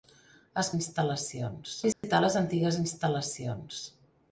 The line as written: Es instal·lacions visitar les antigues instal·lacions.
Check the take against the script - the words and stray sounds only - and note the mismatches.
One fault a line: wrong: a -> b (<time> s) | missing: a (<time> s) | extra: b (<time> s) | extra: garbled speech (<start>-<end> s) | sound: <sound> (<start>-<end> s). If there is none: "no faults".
sound: dropout (1.9-2.0 s)